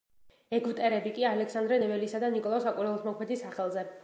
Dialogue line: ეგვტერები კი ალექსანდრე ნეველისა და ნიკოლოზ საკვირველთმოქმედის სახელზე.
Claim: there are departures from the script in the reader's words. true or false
false